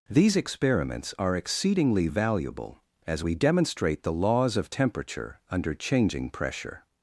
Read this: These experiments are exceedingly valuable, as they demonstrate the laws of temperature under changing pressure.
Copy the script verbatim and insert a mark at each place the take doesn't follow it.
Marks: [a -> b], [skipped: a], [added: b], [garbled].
These experiments are exceedingly valuable, as [they -> we] demonstrate the laws of temperature under changing pressure.